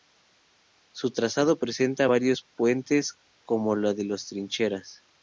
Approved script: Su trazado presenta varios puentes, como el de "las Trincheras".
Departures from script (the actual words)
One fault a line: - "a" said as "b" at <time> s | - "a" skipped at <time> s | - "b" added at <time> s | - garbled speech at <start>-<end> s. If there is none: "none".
none